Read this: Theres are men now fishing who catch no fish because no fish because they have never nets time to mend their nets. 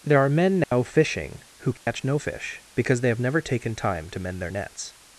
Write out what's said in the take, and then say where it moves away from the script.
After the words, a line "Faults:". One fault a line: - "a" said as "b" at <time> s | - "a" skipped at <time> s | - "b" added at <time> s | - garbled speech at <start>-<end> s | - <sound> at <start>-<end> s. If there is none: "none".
There are men now fishing who catch no fish because they have never taken time to mend their nets.
Faults:
- "Theres" said as "There" at 0.0 s
- dropout at 0.6-0.7 s
- dropout at 1.8-1.9 s
- "no fish because" skipped at 3.0 s
- "nets" said as "taken" at 3.4 s